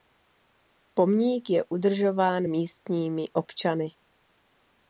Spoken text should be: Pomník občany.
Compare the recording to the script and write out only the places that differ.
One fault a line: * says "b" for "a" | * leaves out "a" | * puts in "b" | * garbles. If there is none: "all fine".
* puts in "je udržován místními"